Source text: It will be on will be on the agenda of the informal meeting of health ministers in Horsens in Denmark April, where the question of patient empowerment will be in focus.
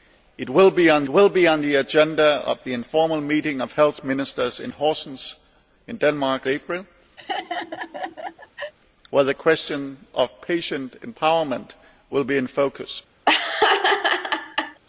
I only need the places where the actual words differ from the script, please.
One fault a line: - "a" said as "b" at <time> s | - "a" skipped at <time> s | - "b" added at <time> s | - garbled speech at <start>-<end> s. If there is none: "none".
none